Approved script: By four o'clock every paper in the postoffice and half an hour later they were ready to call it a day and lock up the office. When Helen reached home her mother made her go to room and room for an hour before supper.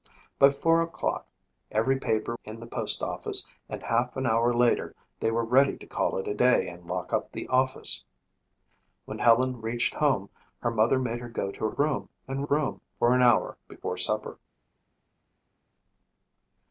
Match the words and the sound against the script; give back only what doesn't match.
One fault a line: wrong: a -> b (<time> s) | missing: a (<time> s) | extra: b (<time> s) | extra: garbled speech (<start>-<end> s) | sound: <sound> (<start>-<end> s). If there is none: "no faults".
no faults